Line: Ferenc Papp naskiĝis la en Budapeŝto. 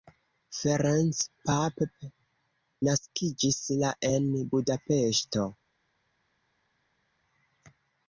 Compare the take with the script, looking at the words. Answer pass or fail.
pass